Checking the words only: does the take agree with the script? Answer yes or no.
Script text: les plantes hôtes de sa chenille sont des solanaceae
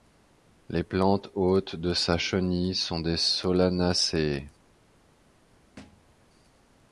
yes